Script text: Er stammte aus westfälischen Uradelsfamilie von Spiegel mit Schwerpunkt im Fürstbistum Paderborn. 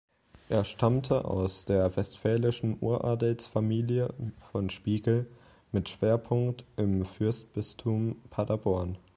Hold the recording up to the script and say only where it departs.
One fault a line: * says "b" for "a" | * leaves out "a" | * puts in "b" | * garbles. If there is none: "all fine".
* puts in "der"